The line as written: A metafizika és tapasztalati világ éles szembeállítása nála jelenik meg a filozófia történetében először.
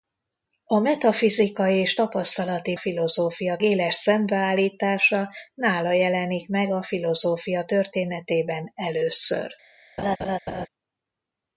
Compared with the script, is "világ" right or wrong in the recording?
wrong